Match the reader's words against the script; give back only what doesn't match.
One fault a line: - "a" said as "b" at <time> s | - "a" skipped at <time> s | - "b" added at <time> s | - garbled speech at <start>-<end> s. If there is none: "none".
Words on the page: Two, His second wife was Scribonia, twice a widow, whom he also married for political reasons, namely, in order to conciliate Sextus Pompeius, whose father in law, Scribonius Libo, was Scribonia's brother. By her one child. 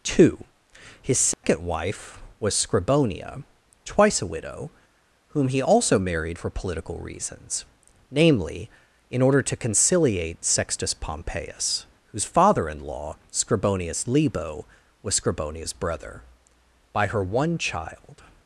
none